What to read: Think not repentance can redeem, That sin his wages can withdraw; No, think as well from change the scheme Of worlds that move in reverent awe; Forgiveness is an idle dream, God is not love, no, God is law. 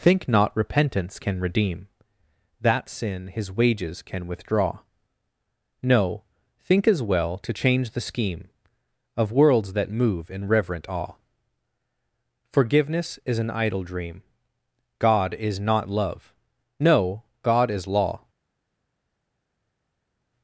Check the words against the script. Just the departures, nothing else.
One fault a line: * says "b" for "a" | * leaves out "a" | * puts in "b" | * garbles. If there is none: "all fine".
* says "to" for "from"